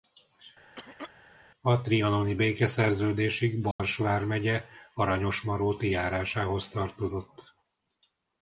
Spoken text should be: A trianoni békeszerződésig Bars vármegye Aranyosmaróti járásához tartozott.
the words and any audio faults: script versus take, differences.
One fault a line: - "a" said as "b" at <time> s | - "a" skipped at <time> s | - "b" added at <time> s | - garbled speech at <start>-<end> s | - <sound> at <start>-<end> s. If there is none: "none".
- cough at 0.8-1.1 s
- dropout at 3.7-3.8 s